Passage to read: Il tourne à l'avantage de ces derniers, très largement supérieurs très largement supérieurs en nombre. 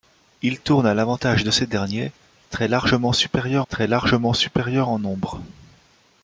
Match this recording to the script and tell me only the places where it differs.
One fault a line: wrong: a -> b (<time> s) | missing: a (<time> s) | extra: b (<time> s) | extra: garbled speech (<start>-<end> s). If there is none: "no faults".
no faults